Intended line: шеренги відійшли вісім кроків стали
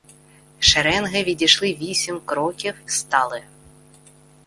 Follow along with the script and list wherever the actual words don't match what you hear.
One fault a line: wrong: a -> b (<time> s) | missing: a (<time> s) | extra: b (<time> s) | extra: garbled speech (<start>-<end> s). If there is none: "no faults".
no faults